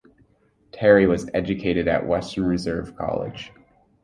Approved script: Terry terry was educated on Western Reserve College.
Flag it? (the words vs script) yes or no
yes